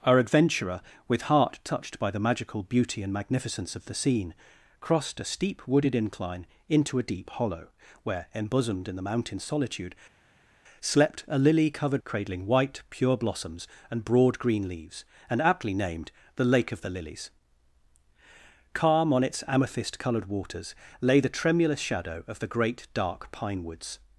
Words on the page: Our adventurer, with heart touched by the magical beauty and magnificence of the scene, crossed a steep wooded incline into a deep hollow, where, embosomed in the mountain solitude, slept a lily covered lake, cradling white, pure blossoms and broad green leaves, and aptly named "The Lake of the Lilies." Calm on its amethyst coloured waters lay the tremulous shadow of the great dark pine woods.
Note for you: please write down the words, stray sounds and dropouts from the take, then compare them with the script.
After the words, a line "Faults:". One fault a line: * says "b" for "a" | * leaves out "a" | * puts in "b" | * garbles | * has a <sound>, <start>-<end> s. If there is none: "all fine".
Our adventurer, with heart touched by the magical beauty and magnificence of the scene, crossed a steep wooded incline into a deep hollow, where, embosomed in the mountain solitude, slept a lily covered cradling white, pure blossoms and broad green leaves, and aptly named "The Lake of the Lilies." Calm on its amethyst coloured waters lay the tremulous shadow of the great dark pine woods.
Faults:
* leaves out "lake"